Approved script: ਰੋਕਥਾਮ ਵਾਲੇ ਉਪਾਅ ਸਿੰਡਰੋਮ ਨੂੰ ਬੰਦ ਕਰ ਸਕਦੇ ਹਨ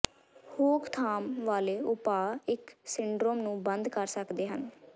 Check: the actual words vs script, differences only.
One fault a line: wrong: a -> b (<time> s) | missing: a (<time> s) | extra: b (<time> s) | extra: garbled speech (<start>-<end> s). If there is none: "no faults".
extra: ਇਸ (2.5 s)